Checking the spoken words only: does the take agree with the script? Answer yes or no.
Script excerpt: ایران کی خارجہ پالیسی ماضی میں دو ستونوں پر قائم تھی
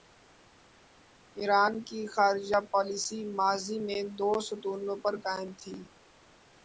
yes